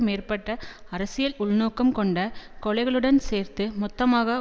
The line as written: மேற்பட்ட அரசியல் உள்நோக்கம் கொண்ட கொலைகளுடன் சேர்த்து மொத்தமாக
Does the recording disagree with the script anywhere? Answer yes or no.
no